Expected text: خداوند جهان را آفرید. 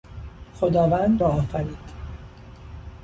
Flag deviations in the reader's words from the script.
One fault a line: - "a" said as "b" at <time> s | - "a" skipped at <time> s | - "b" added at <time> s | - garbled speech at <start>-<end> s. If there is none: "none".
- "جهان" skipped at 1.2 s